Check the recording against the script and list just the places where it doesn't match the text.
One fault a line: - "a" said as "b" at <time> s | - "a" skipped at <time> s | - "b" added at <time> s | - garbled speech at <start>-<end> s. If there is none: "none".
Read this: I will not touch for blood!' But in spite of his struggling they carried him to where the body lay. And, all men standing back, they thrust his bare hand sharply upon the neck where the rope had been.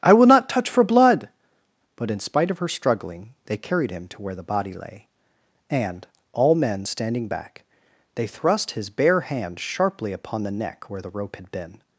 - "his" said as "her" at 2.6 s